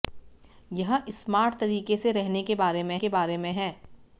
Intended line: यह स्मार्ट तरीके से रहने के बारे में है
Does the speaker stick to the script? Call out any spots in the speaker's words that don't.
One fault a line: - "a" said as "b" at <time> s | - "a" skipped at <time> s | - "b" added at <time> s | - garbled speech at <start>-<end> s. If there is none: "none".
- "के बारे में" added at 3.0 s